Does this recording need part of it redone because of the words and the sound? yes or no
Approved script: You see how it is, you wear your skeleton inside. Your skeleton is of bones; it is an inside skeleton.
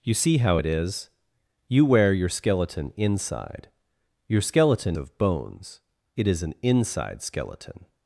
yes